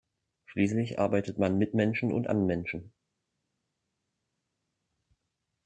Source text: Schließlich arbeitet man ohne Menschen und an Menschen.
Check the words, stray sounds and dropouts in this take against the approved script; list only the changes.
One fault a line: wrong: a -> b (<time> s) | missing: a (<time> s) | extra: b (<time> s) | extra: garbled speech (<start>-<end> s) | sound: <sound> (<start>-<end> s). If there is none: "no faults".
wrong: ohne -> mit (1.6 s)